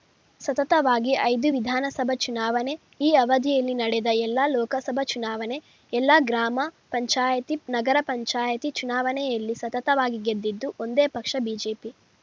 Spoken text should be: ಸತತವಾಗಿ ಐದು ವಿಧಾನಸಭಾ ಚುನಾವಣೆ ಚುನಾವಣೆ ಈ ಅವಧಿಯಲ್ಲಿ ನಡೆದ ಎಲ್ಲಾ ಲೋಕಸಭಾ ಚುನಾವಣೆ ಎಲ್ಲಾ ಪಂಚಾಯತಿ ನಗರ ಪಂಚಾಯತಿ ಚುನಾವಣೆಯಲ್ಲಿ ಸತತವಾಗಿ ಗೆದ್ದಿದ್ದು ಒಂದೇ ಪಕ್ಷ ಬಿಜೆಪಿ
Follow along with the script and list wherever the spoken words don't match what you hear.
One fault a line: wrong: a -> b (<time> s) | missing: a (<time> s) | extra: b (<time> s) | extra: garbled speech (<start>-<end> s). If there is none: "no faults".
missing: ಚುನಾವಣೆ (2.7 s)
extra: ಗ್ರಾಮ (6.2 s)